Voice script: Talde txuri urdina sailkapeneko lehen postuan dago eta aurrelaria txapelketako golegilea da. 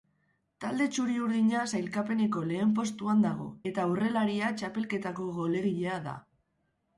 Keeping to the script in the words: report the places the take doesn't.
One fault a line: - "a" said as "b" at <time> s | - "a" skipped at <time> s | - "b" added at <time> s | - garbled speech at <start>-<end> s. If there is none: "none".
none